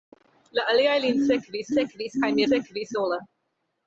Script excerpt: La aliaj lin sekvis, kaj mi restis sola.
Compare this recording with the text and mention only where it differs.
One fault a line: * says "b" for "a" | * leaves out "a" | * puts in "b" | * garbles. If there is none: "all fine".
* puts in "sekvis"
* says "sekvis" for "restis"